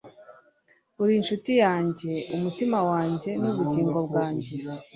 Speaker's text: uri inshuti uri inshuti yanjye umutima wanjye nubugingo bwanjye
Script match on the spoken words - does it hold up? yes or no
no